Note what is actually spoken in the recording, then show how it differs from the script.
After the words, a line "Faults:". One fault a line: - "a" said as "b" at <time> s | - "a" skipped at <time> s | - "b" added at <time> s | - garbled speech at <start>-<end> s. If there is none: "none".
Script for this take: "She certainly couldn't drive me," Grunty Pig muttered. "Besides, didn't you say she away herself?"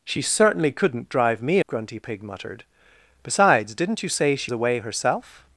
"She certainly couldn't drive me," Grunty Pig muttered. "Besides, didn't you say she away herself?"
Faults:
none